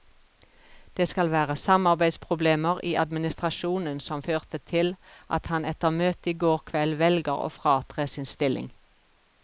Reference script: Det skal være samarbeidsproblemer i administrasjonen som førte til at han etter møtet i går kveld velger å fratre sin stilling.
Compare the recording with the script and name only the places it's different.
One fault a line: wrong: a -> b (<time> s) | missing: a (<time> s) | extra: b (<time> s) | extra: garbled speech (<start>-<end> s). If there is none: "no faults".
no faults